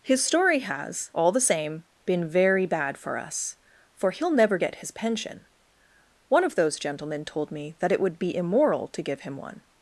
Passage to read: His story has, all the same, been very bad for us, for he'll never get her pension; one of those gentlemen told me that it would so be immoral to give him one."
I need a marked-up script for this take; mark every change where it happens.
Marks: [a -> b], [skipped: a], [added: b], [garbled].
His story has, all the same, been very bad for us, for he'll never get [her -> his] pension; one of those gentlemen told me that it would [skipped: so] be immoral to give him one."